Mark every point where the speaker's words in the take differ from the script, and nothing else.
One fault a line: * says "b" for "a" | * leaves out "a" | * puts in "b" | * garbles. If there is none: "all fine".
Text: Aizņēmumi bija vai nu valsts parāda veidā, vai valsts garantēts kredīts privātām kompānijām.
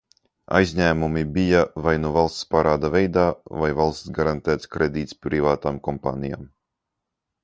all fine